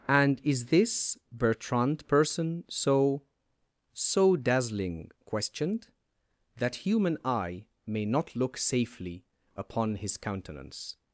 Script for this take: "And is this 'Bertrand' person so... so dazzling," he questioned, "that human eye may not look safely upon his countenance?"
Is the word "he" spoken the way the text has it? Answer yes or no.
no